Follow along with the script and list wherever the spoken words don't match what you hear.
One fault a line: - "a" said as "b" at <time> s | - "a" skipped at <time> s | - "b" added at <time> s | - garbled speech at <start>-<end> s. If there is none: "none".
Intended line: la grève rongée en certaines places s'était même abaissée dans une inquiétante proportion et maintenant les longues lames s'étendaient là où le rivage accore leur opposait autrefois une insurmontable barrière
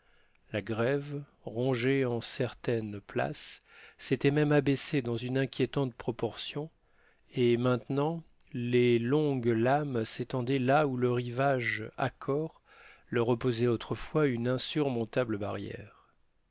none